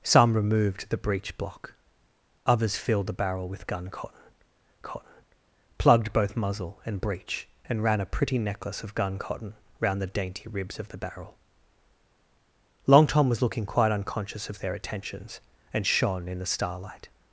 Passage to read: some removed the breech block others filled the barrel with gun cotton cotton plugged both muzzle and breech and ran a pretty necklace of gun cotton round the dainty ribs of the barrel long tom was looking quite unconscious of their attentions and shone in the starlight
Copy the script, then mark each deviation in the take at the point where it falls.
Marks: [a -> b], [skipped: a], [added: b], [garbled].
some removed the breech block others filled the barrel with gun cotton cotton plugged both muzzle and breech and ran a pretty necklace of gun cotton round the dainty ribs of the barrel long tom was looking quite unconscious of their attentions and shone in the starlight